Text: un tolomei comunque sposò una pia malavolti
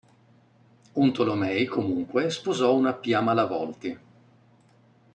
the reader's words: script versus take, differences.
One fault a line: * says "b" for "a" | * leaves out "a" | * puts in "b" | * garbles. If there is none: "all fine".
all fine